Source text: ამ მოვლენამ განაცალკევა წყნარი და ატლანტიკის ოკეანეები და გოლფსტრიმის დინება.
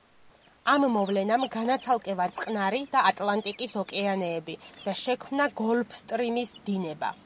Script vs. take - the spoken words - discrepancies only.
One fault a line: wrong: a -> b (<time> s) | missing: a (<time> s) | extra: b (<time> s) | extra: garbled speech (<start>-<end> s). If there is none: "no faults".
extra: შექმნა (5.1 s)